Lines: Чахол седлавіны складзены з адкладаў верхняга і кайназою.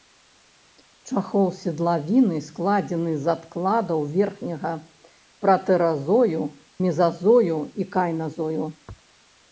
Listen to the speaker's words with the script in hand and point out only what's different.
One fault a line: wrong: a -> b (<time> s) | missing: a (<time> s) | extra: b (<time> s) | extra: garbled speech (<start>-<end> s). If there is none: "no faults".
extra: пратэразою мезазою (5.5 s)